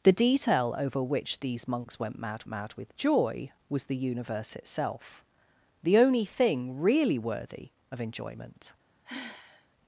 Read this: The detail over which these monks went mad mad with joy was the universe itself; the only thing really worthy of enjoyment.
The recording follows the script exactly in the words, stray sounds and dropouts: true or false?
false